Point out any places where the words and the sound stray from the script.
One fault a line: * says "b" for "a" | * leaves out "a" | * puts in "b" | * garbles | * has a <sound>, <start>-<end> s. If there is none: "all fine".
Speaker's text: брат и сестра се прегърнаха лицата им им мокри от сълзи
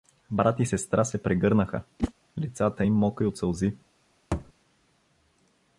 * has a whoosh, 2.0-2.1 s
* leaves out "им"
* has a thud, 4.3-4.5 s